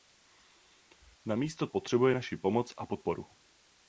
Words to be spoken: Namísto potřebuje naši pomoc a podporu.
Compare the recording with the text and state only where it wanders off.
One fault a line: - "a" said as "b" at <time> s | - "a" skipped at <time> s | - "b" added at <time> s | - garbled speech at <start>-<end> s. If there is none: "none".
none